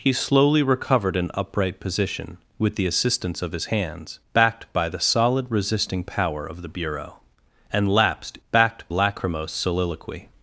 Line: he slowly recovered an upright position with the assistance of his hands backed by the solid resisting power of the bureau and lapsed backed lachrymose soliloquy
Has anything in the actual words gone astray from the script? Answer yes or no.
no